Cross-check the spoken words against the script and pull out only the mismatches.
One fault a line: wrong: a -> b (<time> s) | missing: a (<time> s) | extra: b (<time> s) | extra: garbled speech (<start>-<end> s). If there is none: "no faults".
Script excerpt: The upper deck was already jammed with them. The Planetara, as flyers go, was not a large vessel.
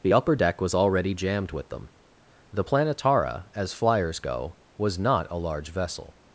no faults